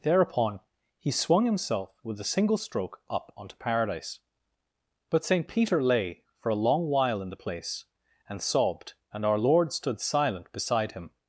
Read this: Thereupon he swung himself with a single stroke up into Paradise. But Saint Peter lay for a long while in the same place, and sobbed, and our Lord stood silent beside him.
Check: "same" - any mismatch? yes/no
yes